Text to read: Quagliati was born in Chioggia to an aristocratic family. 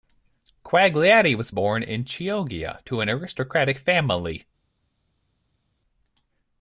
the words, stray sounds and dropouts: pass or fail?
pass